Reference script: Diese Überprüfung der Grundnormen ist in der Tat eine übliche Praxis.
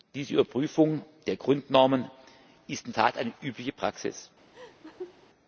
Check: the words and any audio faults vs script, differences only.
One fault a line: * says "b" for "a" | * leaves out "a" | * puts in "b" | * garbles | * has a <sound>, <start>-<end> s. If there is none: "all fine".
* leaves out "der"
* has a laugh, 4.5-5.3 s